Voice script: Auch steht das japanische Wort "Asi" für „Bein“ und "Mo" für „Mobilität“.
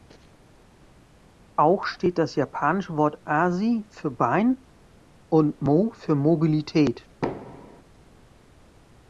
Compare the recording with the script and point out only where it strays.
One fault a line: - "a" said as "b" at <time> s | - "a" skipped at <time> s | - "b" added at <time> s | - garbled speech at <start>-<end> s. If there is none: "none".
none